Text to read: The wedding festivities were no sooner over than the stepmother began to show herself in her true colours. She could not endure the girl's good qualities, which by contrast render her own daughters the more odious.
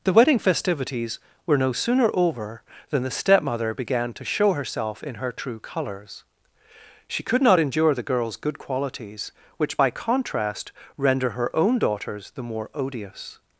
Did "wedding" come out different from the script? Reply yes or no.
no